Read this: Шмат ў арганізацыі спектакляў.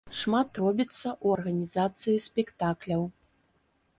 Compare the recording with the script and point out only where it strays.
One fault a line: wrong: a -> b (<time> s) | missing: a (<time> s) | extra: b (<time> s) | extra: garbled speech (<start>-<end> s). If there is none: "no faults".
extra: робіцца (0.6 s)